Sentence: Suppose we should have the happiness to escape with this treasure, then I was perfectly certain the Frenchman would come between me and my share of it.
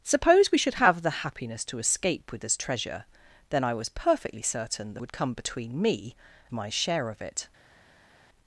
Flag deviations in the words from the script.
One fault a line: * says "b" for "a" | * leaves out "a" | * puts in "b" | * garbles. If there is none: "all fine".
* leaves out "Frenchman"
* leaves out "and"